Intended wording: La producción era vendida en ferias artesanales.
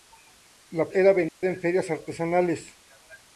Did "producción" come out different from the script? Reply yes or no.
yes